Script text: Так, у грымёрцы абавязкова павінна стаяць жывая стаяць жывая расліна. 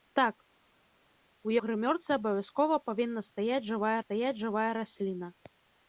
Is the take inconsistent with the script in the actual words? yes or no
no